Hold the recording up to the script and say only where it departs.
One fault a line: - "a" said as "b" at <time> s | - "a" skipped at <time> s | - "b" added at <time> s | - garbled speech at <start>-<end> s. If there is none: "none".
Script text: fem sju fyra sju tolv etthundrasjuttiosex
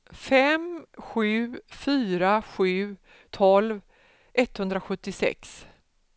none